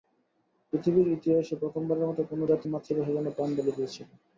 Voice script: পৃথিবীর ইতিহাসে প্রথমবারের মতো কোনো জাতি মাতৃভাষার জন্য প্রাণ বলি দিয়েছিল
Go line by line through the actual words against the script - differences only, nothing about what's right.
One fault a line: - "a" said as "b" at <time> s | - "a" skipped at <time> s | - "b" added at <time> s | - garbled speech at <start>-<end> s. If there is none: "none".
none